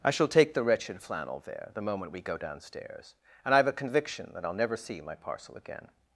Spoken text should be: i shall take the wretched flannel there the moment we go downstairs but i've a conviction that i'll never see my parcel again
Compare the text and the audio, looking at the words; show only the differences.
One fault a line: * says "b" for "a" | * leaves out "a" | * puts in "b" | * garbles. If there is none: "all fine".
* says "and" for "but"